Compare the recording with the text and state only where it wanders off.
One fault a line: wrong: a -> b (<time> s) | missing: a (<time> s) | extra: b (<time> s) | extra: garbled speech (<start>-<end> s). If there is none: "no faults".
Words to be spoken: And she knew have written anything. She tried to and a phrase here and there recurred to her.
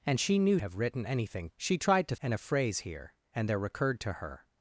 no faults